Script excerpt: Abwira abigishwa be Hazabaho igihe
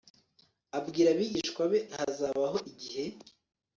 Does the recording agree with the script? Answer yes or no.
yes